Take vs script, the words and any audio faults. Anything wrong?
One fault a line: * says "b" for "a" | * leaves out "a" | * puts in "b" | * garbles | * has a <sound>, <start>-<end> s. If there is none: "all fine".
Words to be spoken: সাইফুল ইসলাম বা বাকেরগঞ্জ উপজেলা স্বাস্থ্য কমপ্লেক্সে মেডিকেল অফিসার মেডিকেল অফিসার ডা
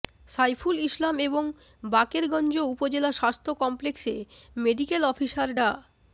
* says "এবং" for "বা"
* leaves out "মেডিকেল অফিসার"